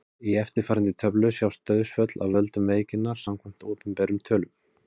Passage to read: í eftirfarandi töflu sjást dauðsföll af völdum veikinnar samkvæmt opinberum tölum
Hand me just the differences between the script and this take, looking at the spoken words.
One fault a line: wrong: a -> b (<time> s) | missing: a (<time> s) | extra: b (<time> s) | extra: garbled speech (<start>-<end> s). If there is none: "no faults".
no faults